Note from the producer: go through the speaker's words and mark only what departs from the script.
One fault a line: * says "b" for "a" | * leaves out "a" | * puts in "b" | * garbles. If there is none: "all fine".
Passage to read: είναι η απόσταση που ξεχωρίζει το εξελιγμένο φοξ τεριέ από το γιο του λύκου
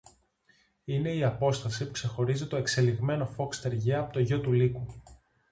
all fine